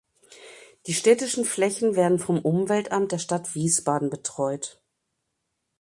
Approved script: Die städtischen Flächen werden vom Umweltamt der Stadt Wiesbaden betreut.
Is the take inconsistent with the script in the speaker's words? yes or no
no